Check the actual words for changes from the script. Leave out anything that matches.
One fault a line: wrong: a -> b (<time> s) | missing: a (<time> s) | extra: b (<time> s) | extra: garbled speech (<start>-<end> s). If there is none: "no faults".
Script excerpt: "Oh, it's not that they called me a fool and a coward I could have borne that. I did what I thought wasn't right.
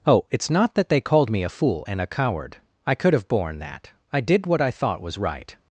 wrong: wasn't -> was (5.0 s)